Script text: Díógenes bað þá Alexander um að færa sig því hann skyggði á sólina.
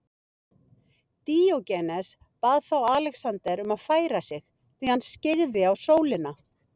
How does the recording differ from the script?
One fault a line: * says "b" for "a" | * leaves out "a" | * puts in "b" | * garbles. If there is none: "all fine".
all fine